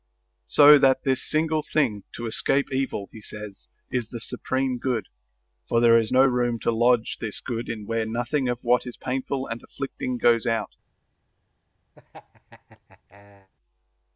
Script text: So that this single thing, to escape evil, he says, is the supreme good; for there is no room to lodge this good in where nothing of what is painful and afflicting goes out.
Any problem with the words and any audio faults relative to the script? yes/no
yes